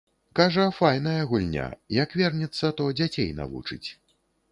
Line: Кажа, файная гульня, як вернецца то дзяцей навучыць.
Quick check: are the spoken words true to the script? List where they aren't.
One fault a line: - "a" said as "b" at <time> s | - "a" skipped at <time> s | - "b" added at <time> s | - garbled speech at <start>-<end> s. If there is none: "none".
none